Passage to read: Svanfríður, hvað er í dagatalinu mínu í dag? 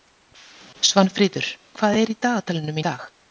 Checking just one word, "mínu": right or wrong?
wrong